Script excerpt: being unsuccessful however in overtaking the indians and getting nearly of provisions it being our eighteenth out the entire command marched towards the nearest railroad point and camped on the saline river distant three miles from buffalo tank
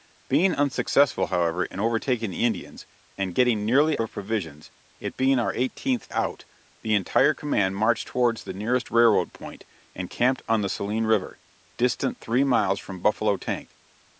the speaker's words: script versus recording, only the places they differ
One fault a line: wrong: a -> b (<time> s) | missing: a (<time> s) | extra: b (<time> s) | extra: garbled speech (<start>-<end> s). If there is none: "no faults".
no faults